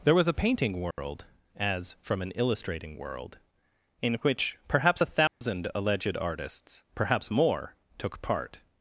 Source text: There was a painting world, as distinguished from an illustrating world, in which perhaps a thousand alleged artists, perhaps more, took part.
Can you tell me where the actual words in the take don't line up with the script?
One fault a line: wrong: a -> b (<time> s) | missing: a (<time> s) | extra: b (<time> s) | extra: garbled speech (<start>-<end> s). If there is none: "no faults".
missing: distinguished (1.9 s)